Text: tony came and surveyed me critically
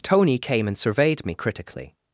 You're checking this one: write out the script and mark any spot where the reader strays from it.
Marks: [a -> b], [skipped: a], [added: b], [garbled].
tony came and surveyed me critically